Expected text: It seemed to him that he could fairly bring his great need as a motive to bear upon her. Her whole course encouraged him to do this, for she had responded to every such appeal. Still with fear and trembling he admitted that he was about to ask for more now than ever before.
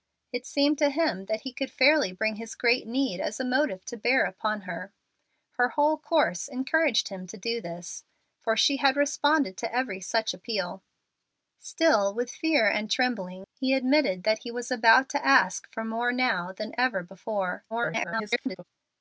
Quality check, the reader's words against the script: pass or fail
fail